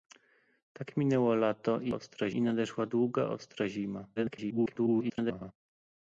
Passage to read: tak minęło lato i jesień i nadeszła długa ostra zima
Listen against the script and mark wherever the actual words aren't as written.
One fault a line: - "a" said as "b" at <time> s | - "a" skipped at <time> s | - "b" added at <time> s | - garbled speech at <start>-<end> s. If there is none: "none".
- "jesień" said as "ostra" at 1.9 s
- garbled speech at 4.2-5.5 s